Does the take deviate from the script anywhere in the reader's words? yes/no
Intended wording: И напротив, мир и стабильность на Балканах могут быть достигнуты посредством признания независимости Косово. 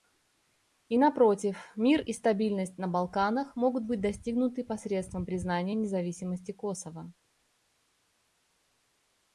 no